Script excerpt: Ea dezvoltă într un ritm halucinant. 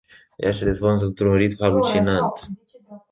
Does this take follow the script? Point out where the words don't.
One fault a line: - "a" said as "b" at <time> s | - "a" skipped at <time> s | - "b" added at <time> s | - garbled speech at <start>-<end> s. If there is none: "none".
- "se" added at 0.5 s